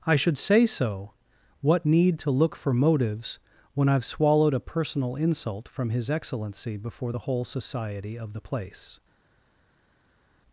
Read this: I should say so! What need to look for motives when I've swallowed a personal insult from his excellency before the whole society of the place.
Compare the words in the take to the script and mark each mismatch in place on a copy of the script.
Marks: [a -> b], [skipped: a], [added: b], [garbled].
I should say so! What need to look for motives when I've swallowed a personal insult from his excellency before the whole society of the place.